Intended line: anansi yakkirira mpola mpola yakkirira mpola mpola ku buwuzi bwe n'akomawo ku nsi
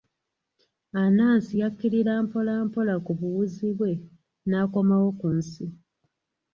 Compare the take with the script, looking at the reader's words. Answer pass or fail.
fail